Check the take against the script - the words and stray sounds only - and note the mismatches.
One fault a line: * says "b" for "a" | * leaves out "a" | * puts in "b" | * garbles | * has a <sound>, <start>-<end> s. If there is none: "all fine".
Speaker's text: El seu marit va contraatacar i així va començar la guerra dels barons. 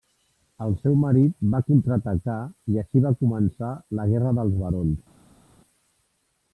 all fine